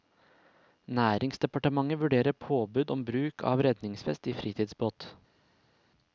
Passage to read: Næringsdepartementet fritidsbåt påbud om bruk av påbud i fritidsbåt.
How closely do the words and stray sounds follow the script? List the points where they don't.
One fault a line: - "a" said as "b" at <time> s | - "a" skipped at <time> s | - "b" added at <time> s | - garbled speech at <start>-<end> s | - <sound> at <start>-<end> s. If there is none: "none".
- "fritidsbåt" said as "vurderer" at 2.0 s
- "påbud" said as "redningsvest" at 3.7 s